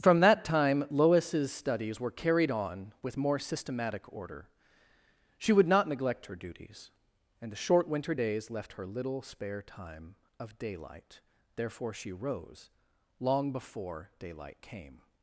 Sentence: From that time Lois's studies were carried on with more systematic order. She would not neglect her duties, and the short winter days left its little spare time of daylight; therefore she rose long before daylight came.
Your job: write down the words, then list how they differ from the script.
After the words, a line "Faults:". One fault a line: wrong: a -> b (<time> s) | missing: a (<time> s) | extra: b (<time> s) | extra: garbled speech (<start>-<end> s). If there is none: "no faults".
From that time Lois's studies were carried on with more systematic order. She would not neglect her duties, and the short winter days left her little spare time of daylight; therefore she rose long before daylight came.
Faults:
wrong: its -> her (8.7 s)